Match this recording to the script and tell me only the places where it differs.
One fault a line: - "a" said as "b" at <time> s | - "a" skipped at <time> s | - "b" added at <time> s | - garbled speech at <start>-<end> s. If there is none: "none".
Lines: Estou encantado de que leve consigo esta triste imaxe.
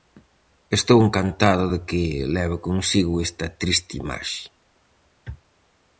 none